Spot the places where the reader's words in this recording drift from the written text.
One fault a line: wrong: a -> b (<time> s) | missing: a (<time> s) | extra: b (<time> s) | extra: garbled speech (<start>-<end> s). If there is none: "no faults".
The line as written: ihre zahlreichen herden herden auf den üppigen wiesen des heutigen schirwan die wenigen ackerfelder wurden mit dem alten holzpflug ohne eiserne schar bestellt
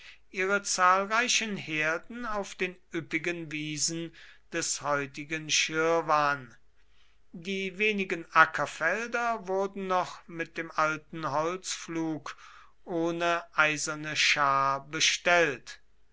missing: herden (2.2 s)
extra: noch (9.8 s)